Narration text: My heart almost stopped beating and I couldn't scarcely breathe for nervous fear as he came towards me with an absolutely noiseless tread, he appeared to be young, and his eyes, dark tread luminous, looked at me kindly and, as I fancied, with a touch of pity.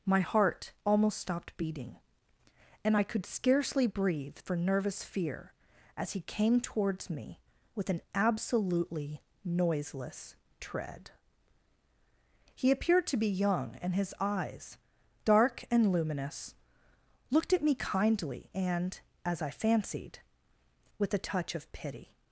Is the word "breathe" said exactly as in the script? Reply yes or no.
yes